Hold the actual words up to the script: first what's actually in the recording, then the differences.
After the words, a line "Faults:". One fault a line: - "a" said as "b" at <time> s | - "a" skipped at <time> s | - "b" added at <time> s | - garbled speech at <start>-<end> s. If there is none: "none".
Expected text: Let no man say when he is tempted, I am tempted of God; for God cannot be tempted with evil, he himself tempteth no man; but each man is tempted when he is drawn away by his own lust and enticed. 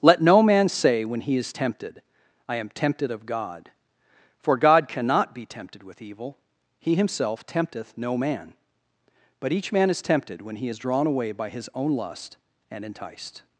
Let no man say when he is tempted, I am tempted of God; for God cannot be tempted with evil, he himself tempteth no man; but each man is tempted when he is drawn away by his own lust and enticed.
Faults:
none